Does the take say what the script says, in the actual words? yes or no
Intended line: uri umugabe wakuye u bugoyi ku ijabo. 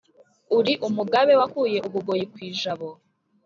yes